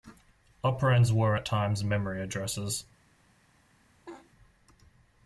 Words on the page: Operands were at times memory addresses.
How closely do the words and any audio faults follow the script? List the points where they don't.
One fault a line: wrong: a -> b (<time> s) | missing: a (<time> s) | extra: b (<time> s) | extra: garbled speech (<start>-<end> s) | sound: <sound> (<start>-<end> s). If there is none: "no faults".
sound: laugh (4.1-4.3 s)